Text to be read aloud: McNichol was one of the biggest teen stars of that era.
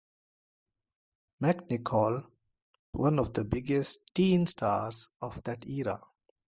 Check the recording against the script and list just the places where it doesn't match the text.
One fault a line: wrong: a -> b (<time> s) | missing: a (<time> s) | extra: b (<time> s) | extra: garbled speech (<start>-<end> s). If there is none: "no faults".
missing: was (2.3 s)